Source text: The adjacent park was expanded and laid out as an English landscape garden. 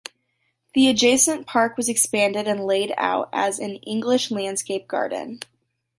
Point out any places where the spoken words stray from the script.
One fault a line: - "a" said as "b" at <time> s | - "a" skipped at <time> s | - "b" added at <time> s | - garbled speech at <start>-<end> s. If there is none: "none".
none